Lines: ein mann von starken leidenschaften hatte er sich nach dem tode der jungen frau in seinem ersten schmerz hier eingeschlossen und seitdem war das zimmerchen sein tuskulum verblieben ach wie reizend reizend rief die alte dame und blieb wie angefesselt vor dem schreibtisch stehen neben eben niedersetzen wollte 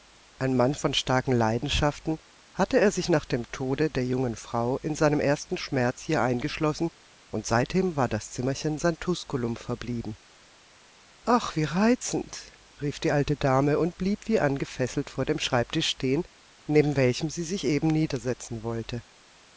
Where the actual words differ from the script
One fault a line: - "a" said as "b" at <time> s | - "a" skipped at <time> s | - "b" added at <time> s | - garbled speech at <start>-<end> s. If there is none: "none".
- "reizend" skipped at 12.5 s
- "welchem sie sich" added at 17.0 s